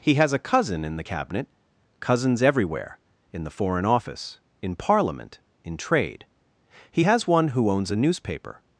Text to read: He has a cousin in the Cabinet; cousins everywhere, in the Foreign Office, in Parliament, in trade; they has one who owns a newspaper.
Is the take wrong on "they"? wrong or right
wrong